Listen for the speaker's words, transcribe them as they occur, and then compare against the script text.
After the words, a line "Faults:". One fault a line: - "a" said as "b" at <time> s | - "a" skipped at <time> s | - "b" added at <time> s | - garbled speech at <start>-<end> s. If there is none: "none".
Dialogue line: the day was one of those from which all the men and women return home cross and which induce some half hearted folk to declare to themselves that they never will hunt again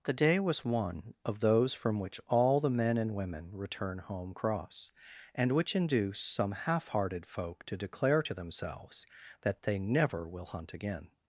the day was one of those from which all the men and women return home cross and which induce some half hearted folk to declare to themselves that they never will hunt again
Faults:
none